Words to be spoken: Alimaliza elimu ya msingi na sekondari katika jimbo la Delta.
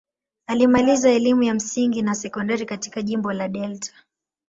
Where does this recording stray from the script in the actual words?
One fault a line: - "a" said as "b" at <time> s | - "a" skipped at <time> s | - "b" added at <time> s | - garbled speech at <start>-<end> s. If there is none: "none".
none